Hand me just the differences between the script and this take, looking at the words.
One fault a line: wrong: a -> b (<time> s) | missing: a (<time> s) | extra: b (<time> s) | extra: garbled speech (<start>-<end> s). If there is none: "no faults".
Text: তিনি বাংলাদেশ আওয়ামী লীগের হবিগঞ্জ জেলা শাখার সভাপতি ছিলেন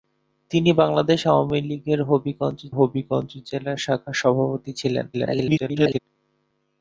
extra: হবিগঞ্জ (2.7 s)
extra: garbled speech (5.1-6.0 s)